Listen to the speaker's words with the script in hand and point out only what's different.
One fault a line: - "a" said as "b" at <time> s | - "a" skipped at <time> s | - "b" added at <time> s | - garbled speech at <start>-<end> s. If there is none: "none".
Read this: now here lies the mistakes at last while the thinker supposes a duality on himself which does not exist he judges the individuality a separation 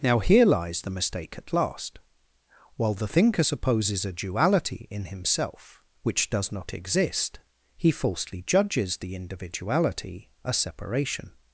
- "mistakes" said as "mistake" at 0.9 s
- "on" said as "in" at 4.9 s
- "falsely" added at 7.9 s